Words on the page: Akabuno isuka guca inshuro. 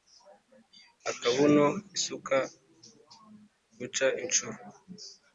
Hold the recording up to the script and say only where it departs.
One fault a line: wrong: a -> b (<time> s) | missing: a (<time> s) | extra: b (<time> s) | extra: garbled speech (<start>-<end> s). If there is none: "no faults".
no faults